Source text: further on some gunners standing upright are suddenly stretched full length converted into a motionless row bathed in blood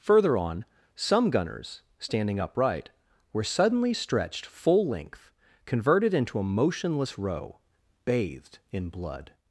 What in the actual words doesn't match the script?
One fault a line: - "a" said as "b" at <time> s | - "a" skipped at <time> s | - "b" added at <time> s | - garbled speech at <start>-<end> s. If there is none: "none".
- "are" said as "were" at 3.3 s